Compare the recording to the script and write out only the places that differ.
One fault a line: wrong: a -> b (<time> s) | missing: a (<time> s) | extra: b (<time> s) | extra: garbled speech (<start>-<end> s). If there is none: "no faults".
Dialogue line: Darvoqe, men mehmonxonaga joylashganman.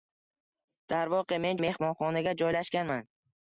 no faults